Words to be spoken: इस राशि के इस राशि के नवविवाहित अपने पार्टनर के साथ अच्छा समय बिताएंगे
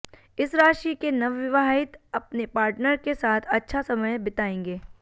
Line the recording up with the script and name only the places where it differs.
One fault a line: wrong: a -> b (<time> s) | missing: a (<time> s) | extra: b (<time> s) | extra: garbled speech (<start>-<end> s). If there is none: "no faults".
missing: इस राशि के (1.1 s)